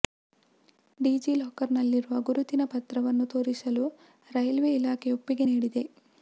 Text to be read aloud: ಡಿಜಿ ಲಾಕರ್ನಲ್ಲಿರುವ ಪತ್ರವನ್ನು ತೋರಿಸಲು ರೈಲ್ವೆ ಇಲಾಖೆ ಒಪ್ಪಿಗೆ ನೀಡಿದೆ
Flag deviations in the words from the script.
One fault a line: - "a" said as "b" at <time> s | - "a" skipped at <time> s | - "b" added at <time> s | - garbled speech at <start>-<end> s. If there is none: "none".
- "ಗುರುತಿನ" added at 2.2 s